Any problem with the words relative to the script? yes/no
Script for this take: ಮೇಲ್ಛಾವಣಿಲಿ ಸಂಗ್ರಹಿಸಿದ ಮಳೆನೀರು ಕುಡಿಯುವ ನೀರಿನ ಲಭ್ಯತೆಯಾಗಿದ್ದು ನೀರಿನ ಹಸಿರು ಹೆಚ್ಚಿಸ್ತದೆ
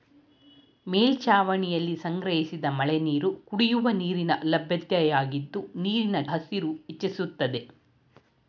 no